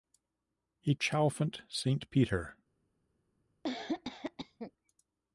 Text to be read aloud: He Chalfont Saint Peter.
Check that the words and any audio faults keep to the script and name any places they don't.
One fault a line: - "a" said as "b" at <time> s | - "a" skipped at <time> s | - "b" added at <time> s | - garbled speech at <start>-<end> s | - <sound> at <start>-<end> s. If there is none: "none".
- cough at 3.6-4.7 s